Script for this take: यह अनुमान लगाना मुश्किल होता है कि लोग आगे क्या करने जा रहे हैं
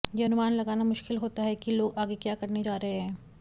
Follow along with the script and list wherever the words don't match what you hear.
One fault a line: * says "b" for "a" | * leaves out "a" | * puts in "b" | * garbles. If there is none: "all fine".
all fine